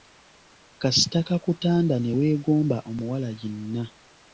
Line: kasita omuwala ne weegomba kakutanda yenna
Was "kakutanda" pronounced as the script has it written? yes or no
no